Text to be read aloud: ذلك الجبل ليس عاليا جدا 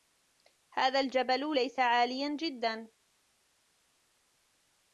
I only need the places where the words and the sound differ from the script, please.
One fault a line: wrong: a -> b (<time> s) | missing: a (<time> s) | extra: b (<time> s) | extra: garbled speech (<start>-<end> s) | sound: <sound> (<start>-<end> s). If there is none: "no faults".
wrong: ذلك -> هذا (0.7 s)